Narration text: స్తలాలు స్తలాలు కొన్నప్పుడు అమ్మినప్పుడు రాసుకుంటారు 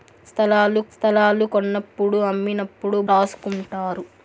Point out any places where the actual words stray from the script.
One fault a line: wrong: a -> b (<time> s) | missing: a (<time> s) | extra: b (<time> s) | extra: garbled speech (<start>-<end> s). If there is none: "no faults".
no faults